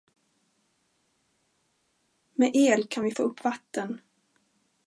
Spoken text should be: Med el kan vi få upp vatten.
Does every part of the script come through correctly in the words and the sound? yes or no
yes